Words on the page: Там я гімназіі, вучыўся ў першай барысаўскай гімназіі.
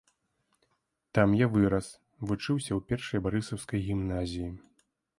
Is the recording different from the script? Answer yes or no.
yes